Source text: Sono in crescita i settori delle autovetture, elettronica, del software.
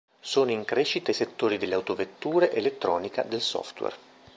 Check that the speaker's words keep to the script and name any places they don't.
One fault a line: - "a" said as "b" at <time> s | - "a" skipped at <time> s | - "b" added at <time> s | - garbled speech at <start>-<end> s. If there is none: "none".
none